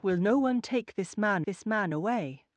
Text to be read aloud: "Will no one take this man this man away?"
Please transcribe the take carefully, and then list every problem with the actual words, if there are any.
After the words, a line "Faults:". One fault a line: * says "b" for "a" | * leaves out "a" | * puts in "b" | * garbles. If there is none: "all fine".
"Will no one take this man this man away?"
Faults:
all fine